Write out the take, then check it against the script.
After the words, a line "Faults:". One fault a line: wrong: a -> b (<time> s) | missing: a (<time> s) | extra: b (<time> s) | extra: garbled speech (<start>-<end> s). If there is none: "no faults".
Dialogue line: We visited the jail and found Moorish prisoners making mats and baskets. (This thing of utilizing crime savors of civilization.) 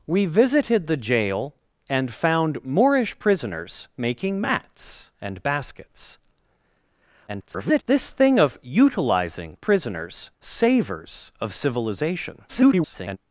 We visited the jail and found Moorish prisoners making mats and baskets. [garbled] (This thing of utilizing prisoners savors of civilization.) [garbled]
Faults:
extra: garbled speech (7.3-7.8 s)
wrong: crime -> prisoners (9.6 s)
extra: garbled speech (12.5-13.2 s)